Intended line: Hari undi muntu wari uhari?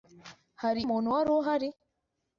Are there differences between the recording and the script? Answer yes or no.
yes